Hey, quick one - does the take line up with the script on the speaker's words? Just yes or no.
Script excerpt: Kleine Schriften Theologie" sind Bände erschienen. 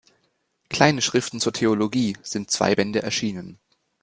no